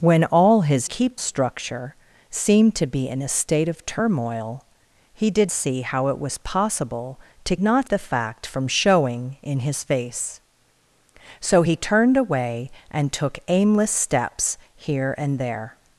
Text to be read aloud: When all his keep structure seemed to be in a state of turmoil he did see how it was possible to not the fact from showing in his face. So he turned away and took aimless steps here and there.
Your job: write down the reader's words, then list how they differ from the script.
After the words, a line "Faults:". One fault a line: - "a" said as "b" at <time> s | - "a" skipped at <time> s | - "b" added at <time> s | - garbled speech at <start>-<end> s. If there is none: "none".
When all his keep structure seemed to be in a state of turmoil he did see how it was possible to not the fact from showing in his face. So he turned away and took aimless steps here and there.
Faults:
none